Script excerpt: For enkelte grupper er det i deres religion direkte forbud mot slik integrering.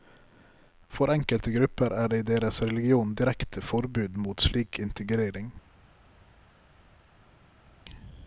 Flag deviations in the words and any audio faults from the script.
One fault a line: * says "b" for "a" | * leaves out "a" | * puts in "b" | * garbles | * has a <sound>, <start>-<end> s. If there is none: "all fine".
all fine